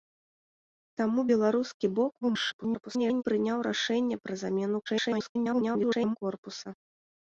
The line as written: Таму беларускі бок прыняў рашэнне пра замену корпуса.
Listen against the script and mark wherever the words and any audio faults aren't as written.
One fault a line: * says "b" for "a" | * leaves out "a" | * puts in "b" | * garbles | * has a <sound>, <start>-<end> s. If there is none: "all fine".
* garbles
* garbles